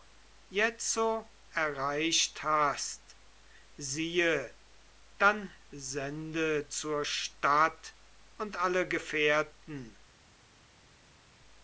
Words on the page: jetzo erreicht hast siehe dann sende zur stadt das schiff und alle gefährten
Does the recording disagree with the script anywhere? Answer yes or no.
yes